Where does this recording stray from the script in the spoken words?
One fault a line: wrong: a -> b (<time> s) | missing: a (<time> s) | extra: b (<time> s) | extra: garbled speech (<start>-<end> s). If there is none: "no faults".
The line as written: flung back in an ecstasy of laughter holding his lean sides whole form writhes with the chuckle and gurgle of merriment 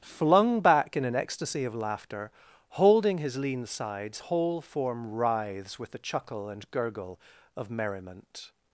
no faults